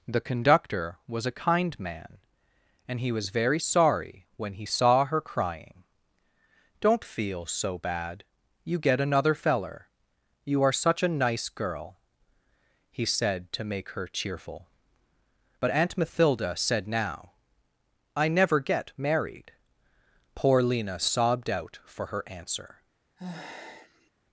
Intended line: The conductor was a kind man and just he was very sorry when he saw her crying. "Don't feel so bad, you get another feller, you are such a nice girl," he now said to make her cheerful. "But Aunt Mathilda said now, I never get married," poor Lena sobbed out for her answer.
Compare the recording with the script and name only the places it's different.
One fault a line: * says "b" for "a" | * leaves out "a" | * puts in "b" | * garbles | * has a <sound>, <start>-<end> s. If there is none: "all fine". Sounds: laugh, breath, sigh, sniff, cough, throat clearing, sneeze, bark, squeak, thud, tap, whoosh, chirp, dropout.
* leaves out "just"
* leaves out "now"
* has a sigh, 23.2-24.1 s